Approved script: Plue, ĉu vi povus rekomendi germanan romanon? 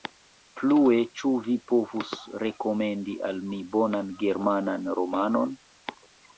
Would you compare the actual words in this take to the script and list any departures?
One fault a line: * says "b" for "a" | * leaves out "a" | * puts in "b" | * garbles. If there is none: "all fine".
* puts in "al mi bonan"